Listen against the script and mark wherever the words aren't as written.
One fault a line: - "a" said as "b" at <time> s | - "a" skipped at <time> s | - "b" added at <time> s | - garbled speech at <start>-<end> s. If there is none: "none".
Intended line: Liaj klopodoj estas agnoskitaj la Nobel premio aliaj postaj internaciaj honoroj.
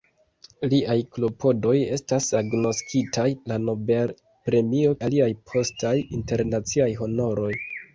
none